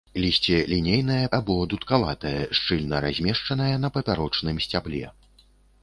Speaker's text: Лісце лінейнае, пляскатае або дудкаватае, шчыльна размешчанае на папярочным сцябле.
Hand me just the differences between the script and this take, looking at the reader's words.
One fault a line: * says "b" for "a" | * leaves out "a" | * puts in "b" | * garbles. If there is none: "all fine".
* leaves out "пляскатае"